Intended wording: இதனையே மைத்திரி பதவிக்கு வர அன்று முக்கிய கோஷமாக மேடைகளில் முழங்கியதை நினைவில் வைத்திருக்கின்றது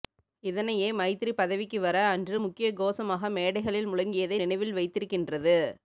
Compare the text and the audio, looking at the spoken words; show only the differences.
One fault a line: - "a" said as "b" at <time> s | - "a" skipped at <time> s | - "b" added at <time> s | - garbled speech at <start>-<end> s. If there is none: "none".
none